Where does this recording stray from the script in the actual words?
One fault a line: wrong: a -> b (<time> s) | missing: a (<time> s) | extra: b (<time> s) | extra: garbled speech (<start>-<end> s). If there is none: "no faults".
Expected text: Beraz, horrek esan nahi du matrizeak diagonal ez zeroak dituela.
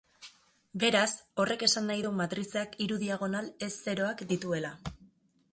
extra: hiru (2.8 s)